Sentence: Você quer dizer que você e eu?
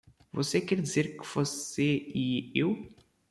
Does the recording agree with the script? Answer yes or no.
yes